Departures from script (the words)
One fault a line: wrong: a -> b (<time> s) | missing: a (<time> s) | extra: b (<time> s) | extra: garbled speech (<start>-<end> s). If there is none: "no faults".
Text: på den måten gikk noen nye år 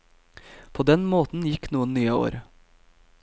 no faults